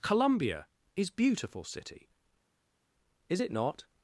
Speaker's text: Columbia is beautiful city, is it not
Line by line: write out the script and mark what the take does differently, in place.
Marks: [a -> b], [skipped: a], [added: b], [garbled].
Columbia is beautiful city, is it not